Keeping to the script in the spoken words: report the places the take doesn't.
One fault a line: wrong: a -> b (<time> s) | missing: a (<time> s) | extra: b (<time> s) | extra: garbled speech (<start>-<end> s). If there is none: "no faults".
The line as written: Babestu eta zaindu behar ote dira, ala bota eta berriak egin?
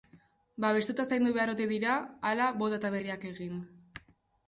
no faults